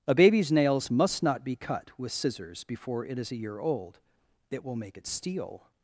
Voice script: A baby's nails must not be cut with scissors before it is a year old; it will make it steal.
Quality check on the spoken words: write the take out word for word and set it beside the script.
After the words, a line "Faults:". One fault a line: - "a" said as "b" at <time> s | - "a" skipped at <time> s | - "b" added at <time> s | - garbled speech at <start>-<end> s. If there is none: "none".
A baby's nails must not be cut with scissors before it is a year old; it will make it steal.
Faults:
none